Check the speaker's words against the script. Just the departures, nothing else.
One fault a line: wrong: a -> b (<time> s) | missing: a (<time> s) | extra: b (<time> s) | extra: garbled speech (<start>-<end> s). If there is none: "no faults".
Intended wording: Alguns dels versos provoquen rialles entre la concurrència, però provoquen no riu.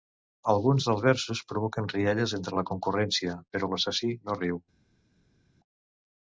wrong: provoquen -> l'assassí (3.7 s)